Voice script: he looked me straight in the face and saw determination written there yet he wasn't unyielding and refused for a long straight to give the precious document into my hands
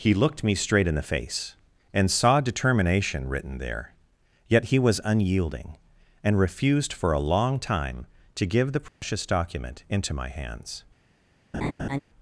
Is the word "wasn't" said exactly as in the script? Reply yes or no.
no